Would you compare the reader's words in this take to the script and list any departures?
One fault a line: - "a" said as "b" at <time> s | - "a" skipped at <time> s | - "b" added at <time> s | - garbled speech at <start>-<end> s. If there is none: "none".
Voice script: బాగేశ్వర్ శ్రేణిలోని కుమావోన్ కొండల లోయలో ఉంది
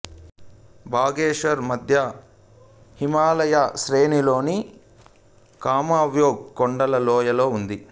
- "మధ్య హిమాలయ" added at 1.6 s